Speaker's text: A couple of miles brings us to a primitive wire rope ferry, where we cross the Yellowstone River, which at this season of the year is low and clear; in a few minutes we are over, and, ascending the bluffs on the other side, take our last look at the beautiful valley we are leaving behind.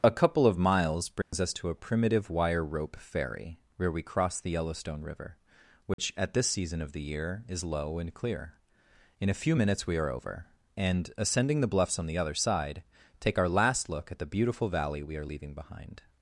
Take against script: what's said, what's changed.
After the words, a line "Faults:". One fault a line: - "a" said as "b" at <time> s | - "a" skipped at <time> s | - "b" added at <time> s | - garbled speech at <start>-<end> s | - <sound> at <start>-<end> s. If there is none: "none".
A couple of miles brings us to a primitive wire rope ferry, where we cross the Yellowstone River, which at this season of the year is low and clear; in a few minutes we are over, and, ascending the bluffs on the other side, take our last look at the beautiful valley we are leaving behind.
Faults:
- dropout at 1.2-1.3 s
- dropout at 5.9-6.0 s